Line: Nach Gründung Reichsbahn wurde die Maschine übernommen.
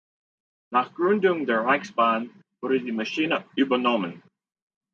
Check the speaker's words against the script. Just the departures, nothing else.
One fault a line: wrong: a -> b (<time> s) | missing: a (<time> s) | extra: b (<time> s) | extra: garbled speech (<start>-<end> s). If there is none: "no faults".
extra: der (1.4 s)